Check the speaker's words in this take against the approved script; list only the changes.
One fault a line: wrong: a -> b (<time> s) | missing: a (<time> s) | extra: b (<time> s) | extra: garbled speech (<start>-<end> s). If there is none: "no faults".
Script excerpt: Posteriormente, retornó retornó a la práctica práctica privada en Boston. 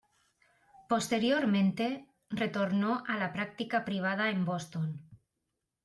missing: retornó (3.0 s)
missing: práctica (3.9 s)